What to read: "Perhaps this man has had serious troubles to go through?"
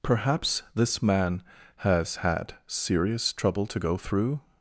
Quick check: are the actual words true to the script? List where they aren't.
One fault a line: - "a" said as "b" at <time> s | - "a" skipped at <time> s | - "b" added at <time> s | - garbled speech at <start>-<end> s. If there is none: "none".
- "troubles" said as "trouble" at 3.3 s